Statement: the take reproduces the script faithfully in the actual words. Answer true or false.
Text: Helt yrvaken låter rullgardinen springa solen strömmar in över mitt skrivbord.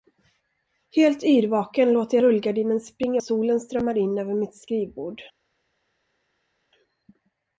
true